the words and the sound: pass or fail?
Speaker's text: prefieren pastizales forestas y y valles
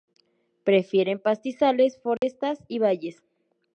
fail